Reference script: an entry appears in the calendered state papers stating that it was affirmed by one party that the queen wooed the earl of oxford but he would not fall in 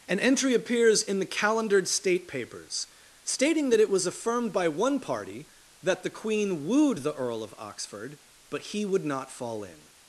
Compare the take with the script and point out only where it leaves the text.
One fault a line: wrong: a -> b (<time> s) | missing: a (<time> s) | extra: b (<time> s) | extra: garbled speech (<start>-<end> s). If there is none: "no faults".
no faults